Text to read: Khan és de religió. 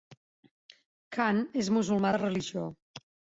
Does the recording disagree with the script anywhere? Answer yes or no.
yes